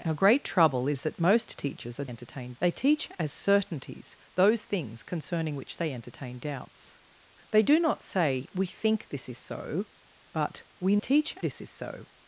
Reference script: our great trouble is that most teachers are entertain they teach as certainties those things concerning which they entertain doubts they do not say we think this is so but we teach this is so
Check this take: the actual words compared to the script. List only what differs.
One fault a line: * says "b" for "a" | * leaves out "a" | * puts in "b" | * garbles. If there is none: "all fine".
all fine